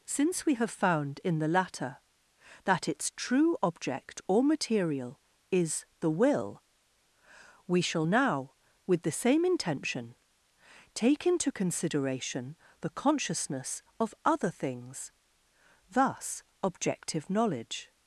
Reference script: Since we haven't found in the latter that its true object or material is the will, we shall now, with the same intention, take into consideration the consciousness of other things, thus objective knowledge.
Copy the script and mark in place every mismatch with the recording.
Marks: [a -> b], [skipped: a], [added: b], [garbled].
Since we [haven't -> have] found in the latter that its true object or material is the will, we shall now, with the same intention, take into consideration the consciousness of other things, thus objective knowledge.